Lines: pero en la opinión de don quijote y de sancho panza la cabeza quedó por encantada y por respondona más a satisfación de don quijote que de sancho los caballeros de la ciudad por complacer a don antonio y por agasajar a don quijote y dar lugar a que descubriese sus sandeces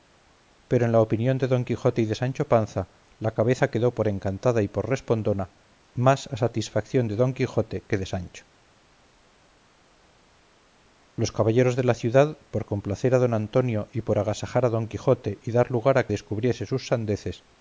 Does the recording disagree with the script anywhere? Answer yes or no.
yes